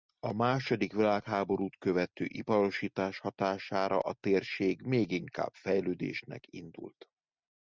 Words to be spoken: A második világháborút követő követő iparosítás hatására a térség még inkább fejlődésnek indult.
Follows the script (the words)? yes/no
no